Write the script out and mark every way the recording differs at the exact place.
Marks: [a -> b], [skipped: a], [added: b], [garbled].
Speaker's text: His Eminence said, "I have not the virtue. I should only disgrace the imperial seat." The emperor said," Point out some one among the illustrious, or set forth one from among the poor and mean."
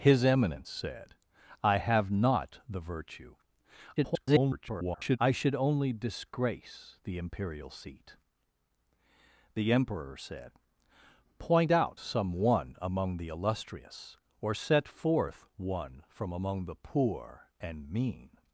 His Eminence said, "I have not the virtue. [garbled] I should only disgrace the imperial seat." The emperor said," Point out some one among the illustrious, or set forth one from among the poor and mean."